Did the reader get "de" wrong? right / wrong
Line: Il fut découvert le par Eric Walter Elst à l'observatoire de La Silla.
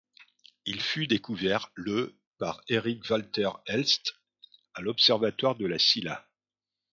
right